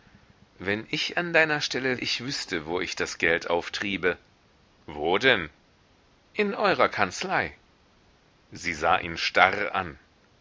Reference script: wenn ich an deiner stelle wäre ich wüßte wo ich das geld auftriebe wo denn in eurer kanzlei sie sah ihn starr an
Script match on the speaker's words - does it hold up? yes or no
no